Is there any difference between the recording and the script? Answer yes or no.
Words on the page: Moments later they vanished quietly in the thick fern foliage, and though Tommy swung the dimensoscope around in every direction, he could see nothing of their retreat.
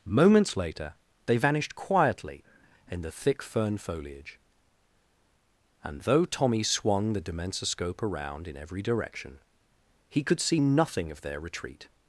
no